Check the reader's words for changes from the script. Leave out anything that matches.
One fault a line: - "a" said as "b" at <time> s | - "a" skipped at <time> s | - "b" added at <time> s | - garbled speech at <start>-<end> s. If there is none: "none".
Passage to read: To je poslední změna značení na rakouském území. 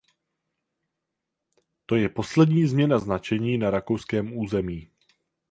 none